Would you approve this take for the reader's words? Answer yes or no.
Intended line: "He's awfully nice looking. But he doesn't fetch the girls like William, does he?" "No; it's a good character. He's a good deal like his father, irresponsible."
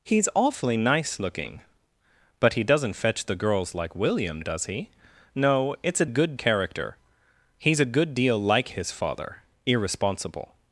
yes